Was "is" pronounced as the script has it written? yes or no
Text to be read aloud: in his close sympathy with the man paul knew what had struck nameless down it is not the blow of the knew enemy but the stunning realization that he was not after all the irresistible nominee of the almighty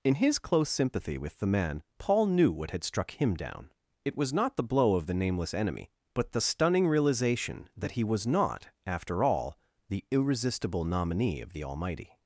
no